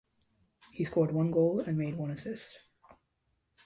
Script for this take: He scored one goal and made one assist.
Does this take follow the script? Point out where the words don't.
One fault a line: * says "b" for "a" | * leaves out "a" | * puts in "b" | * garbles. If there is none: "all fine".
all fine